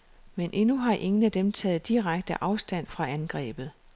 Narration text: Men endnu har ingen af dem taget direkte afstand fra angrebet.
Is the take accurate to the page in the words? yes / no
yes